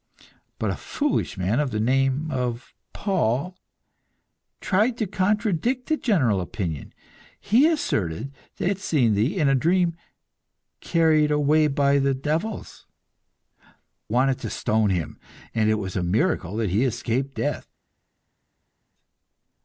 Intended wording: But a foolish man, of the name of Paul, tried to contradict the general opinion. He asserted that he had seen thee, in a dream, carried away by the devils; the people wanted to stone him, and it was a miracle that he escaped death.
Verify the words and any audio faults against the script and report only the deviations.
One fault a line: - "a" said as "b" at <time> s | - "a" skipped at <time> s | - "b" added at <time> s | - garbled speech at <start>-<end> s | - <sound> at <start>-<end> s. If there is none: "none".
- "he" skipped at 8.7 s
- "the people" skipped at 12.9 s